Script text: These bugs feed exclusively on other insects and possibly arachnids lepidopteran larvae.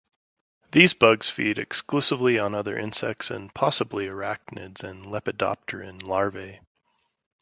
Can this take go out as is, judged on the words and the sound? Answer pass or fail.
fail